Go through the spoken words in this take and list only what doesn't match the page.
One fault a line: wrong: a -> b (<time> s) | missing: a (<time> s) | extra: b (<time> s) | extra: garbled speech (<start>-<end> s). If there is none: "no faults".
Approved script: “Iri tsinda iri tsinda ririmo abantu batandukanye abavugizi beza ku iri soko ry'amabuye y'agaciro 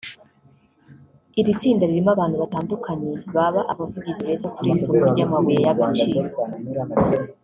missing: iri tsinda (1.8 s)
extra: baba (3.4 s)
wrong: ku -> kuri (4.5 s)